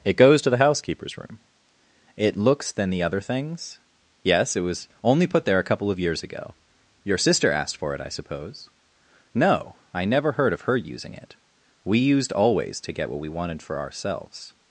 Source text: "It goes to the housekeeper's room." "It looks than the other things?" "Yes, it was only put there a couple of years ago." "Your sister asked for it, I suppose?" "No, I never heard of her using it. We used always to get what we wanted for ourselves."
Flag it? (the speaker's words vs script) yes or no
no